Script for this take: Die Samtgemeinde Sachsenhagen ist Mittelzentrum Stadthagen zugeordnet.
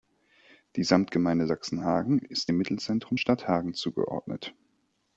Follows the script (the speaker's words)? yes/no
no